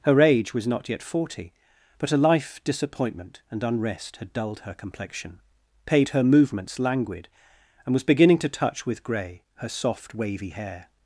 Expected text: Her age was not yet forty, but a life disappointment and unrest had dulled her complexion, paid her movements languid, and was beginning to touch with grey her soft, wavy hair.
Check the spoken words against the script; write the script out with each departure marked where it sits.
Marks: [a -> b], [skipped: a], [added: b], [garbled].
Her age was not yet forty, but a life disappointment and unrest had dulled her complexion, paid her movements languid, and was beginning to touch with grey her soft, wavy hair.